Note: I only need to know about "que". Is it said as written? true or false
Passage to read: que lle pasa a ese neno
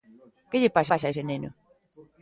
true